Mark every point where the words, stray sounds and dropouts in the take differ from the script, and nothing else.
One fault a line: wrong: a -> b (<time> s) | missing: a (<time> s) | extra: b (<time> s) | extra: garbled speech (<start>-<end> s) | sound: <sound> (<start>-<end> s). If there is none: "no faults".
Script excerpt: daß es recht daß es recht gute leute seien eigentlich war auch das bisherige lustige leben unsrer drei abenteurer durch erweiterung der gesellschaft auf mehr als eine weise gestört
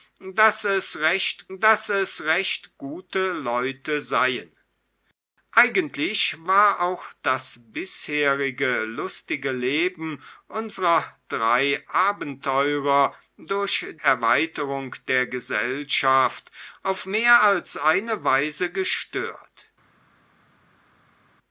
no faults